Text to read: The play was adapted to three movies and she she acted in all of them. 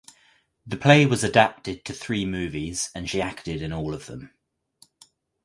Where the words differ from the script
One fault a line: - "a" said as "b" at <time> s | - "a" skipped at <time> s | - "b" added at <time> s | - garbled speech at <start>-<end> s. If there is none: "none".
- "she" skipped at 3.2 s